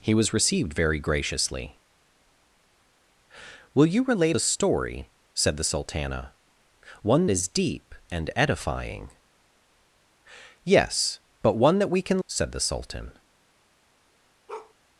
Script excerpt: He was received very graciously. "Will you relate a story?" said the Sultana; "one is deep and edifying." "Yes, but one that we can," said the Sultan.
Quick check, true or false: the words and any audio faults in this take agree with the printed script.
false